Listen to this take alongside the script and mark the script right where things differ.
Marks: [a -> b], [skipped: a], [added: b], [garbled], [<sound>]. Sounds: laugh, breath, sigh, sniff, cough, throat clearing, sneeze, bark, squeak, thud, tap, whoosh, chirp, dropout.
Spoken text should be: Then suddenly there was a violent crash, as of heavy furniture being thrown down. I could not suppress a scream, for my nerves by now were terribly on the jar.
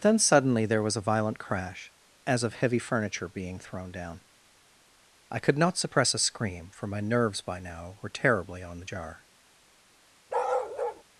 Then suddenly there was a violent crash, as of heavy furniture being thrown down. I could not suppress a scream, for my nerves by now were terribly on the jar. [bark]